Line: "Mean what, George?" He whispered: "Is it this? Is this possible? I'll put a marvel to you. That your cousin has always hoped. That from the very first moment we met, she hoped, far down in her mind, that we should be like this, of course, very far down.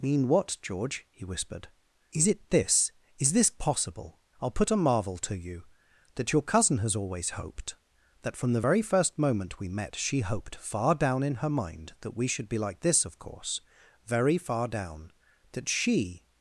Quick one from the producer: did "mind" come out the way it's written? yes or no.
yes